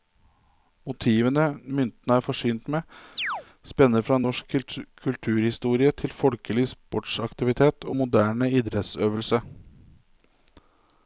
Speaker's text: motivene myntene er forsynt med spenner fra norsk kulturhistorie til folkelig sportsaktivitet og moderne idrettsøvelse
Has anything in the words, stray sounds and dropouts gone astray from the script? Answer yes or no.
yes